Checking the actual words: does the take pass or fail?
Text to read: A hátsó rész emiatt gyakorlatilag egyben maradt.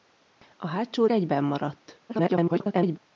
fail